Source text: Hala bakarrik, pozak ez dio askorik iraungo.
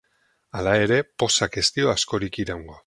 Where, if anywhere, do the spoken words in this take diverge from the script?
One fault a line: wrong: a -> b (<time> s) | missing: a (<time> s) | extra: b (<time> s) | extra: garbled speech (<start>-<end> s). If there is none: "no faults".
wrong: bakarrik -> ere (0.8 s)